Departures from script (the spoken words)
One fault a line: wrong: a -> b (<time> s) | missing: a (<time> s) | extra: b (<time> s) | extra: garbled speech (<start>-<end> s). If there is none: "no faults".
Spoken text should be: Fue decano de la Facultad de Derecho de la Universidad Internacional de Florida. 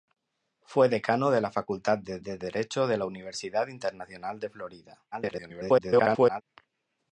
extra: de (2.2 s)
extra: garbled speech (5.1-6.4 s)